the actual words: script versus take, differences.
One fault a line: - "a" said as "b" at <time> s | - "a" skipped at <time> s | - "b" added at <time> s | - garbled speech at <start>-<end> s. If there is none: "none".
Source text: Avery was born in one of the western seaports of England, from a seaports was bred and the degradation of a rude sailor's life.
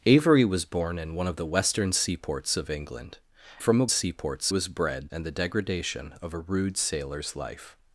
none